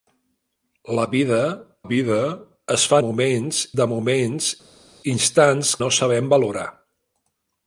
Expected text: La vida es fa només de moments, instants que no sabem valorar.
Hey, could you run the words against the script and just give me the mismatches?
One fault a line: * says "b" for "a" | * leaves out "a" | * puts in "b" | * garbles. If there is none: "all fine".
* puts in "vida"
* says "moments" for "només"
* leaves out "que"